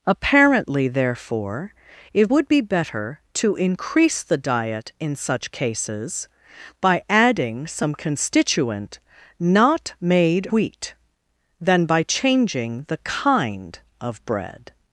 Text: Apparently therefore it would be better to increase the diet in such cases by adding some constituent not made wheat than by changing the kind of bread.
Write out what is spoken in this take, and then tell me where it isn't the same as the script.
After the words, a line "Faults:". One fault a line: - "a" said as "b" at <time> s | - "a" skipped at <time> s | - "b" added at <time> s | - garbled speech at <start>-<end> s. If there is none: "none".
Apparently therefore it would be better to increase the diet in such cases by adding some constituent not made wheat than by changing the kind of bread.
Faults:
none